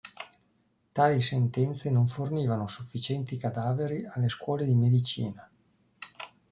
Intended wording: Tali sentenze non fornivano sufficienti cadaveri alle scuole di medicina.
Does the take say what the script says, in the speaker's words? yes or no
yes